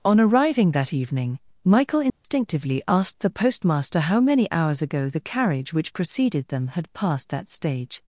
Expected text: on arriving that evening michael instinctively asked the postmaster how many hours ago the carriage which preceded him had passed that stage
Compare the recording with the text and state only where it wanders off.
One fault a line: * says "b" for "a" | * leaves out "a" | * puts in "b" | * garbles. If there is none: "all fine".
* says "them" for "him"